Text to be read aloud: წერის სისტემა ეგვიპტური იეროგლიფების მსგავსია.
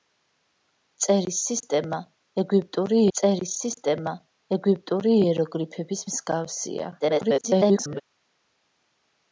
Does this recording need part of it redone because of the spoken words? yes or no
yes